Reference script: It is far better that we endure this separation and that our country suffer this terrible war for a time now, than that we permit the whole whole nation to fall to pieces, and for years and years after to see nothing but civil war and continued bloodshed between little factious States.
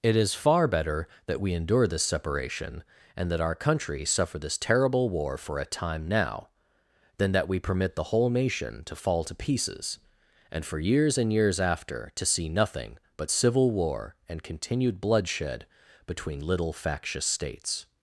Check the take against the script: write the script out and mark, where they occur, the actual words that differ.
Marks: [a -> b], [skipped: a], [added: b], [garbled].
It is far better that we endure this separation and that our country suffer this terrible war for a time now, than that we permit the whole [skipped: whole] nation to fall to pieces, and for years and years after to see nothing but civil war and continued bloodshed between little factious States.